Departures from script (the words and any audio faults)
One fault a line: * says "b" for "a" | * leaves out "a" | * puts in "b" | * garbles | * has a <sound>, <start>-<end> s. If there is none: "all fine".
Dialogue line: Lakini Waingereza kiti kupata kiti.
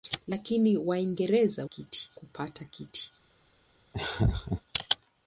* has a laugh, 3.9-4.6 s